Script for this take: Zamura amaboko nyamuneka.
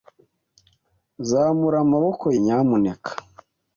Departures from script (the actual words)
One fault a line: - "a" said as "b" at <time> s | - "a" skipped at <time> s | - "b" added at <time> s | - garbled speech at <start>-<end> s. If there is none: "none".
none